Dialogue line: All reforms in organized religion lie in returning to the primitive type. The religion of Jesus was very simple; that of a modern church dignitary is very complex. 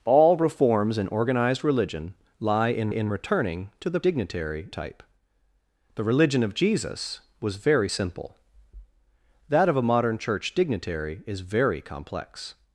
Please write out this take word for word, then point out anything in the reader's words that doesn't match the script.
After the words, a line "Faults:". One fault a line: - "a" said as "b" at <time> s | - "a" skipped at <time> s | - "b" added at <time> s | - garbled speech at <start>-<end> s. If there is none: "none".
All reforms in organized religion lie in in returning to the dignitary type. The religion of Jesus was very simple; that of a modern church dignitary is very complex.
Faults:
- "in" added at 2.9 s
- "primitive" said as "dignitary" at 4.0 s